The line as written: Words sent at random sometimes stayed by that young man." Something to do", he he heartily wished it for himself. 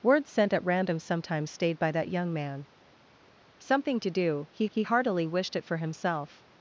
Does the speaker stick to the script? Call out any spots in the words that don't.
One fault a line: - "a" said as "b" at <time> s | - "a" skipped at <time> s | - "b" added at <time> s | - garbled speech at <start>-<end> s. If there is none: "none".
none